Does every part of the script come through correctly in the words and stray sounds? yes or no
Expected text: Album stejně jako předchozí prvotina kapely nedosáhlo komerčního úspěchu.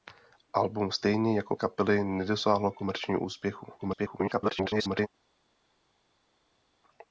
no